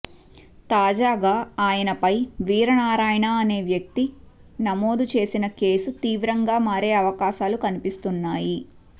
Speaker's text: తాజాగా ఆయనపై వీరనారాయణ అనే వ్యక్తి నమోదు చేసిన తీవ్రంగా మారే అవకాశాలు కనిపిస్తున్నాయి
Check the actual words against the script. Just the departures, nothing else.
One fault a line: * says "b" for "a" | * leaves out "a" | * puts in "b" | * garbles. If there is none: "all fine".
* puts in "కేసు"